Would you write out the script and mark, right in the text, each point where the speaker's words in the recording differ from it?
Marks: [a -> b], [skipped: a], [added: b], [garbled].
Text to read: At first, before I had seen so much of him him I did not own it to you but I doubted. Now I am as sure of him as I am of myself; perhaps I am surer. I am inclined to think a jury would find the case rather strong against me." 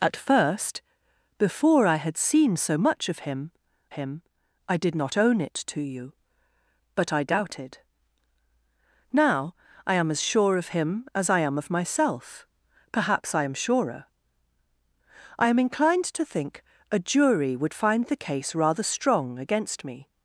At first, before I had seen so much of him him I did not own it to you but I doubted. Now I am as sure of him as I am of myself; perhaps I am surer. I am inclined to think a jury would find the case rather strong against me."